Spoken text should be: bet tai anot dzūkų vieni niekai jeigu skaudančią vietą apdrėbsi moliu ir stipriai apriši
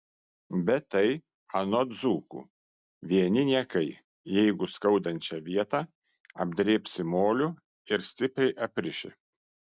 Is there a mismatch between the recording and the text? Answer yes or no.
no